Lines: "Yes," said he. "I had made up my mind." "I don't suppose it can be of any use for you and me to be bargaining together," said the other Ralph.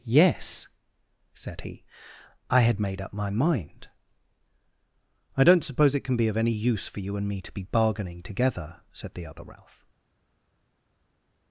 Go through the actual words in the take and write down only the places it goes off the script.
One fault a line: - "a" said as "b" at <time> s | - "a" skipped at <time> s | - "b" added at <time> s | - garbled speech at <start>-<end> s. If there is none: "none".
none